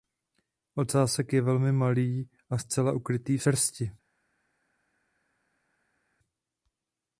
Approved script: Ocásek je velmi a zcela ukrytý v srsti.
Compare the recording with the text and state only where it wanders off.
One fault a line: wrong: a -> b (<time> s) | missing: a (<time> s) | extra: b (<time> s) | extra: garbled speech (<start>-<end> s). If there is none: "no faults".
extra: malý (1.7 s)